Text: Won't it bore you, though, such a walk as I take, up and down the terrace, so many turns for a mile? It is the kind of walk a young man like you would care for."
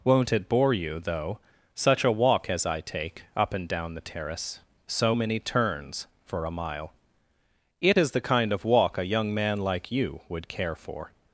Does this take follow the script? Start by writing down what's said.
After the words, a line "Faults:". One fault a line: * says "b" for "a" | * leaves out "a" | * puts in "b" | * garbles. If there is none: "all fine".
Won't it bore you, though, such a walk as I take, up and down the terrace, so many turns for a mile? It is the kind of walk a young man like you would care for."
Faults:
all fine